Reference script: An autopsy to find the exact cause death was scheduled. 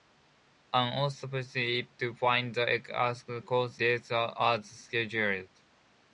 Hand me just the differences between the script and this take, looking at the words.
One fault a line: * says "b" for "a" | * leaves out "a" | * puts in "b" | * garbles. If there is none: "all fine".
all fine